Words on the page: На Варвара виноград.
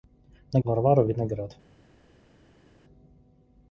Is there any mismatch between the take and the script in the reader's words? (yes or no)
no